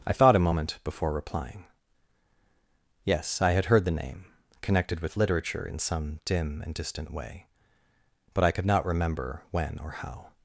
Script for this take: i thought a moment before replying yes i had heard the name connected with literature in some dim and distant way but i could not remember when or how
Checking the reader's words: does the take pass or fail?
pass